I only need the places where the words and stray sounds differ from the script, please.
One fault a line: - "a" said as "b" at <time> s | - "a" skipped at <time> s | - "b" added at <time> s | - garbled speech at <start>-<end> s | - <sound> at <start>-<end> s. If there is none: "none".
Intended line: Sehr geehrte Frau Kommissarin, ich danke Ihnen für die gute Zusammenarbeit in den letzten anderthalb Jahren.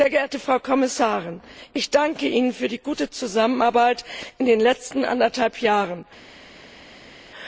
none